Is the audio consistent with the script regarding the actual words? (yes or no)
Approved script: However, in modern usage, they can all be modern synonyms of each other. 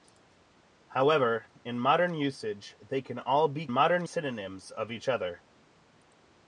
yes